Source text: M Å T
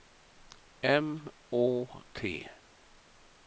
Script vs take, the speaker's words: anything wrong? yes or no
no